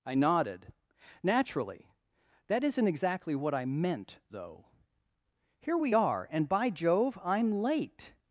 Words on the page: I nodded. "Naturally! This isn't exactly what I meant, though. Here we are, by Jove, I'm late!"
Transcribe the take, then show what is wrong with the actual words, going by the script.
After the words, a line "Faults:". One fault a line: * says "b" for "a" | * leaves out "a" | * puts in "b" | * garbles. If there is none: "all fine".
I nodded. "Naturally! That isn't exactly what I meant, though. Here we are, and by Jove, I'm late!"
Faults:
* says "That" for "This"
* puts in "and"